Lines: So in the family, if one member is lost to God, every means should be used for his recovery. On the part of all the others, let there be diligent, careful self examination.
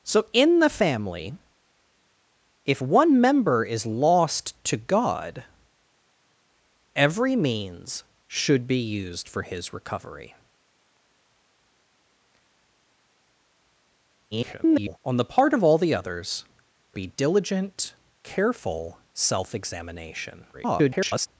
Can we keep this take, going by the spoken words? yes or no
no